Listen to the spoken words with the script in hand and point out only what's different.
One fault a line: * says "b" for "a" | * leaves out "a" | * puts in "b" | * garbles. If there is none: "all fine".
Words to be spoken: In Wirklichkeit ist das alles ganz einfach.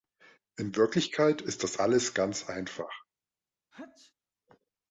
all fine